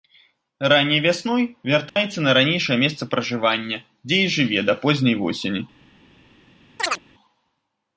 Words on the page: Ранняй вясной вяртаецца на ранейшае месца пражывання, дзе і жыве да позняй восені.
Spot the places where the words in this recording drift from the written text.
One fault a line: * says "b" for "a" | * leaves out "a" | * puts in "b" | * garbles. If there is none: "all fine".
all fine